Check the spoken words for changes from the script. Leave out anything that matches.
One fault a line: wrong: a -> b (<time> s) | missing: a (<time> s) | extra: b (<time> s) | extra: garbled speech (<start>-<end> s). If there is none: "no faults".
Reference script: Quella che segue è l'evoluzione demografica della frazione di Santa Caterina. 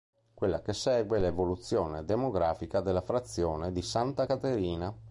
no faults